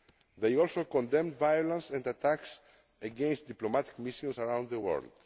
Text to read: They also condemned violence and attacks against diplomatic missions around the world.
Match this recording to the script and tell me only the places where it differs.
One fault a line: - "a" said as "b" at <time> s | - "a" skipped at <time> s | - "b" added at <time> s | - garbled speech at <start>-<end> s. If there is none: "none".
none